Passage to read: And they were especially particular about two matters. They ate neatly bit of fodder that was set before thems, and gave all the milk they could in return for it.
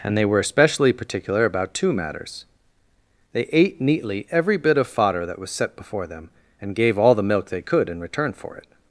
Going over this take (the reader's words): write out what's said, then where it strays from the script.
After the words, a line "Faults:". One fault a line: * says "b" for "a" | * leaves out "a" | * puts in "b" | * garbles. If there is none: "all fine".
And they were especially particular about two matters. They ate neatly every bit of fodder that was set before them, and gave all the milk they could in return for it.
Faults:
* puts in "every"
* says "them" for "thems"